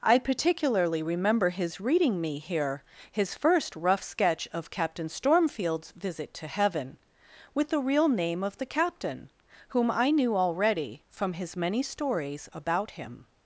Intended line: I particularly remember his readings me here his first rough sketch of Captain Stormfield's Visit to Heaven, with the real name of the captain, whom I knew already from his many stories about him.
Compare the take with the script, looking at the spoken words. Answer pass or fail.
fail